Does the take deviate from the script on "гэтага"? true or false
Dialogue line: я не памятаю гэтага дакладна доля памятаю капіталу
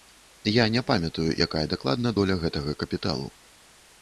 true